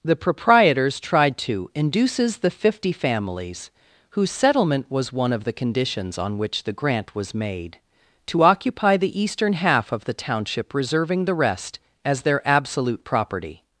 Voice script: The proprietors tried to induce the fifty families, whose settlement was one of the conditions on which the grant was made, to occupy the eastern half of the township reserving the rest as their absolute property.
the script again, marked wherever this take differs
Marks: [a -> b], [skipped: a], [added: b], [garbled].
The proprietors tried to [induce -> induces] the fifty families, whose settlement was one of the conditions on which the grant was made, to occupy the eastern half of the township reserving the rest as their absolute property.